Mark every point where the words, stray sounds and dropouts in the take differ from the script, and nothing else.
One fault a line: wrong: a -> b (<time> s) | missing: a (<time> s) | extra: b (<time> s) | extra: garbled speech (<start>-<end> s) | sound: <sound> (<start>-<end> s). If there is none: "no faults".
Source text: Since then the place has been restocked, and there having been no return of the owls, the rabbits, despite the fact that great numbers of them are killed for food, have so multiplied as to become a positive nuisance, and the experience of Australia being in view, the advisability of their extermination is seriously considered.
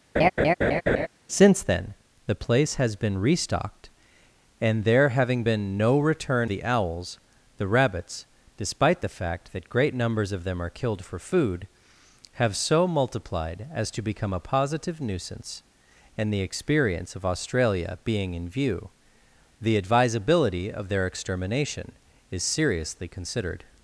sound: laugh (0.2-1.1 s)
missing: of (6.5 s)